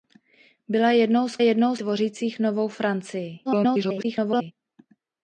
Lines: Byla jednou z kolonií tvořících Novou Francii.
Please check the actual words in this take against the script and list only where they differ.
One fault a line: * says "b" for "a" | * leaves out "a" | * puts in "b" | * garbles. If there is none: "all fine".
* says "jednou" for "kolonií"
* garbles